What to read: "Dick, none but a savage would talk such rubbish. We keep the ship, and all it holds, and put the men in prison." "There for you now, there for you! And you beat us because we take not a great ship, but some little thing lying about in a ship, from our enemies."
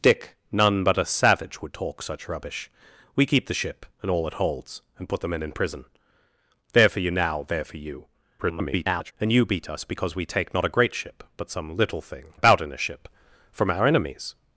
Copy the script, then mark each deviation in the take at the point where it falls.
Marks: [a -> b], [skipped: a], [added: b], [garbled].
"Dick, none but a savage would talk such rubbish. We keep the ship, and all it holds, and put the men in prison." "There for you now, there for you! [garbled] And you beat us because we take not a great ship, but some little thing [skipped: lying] about in a ship, from our enemies."